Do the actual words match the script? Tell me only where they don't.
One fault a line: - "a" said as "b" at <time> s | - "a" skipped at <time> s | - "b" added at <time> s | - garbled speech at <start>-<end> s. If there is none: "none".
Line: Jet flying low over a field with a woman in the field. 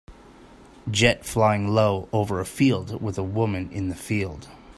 none